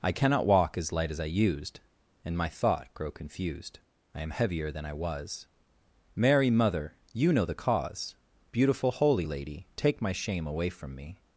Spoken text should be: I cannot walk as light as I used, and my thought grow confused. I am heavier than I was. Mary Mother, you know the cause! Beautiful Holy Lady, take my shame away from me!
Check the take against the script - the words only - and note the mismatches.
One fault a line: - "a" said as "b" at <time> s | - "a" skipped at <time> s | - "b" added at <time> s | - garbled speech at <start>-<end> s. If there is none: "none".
none